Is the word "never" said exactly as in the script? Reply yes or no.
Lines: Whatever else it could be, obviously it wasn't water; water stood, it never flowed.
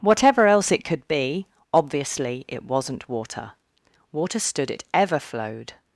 no